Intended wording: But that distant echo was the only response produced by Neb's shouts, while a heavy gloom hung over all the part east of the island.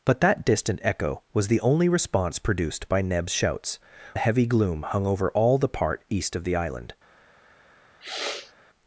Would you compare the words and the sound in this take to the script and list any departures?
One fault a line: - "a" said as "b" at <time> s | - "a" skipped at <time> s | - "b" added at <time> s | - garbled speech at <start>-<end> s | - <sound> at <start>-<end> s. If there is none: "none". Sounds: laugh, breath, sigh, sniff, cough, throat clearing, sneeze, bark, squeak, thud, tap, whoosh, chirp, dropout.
- "while" skipped at 3.8 s
- sniff at 8.0-8.5 s